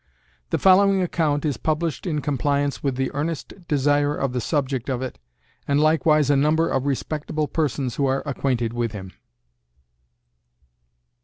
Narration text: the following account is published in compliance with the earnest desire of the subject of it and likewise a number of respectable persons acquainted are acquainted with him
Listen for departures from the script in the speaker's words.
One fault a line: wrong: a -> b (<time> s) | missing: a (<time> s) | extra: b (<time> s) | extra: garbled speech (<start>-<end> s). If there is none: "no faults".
wrong: acquainted -> who (8.0 s)